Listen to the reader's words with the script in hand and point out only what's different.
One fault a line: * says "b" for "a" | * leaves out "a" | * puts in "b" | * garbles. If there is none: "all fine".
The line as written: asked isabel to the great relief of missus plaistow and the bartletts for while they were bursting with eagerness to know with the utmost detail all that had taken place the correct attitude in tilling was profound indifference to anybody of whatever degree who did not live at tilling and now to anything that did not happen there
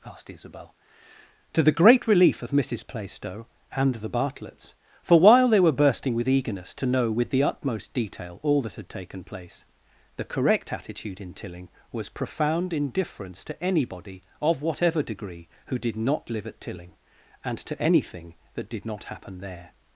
* leaves out "now"